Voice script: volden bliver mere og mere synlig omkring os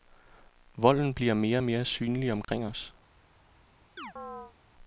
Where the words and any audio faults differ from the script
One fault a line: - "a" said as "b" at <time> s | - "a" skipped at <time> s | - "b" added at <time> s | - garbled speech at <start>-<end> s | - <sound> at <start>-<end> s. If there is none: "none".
- dropout at 2.4-2.5 s
- chirp at 4.0-4.5 s